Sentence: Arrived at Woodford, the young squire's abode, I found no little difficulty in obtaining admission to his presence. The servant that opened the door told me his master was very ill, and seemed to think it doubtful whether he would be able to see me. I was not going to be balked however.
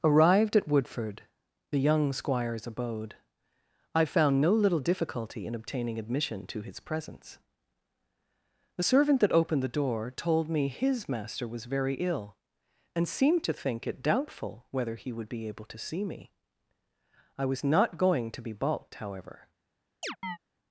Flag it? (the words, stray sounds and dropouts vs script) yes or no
yes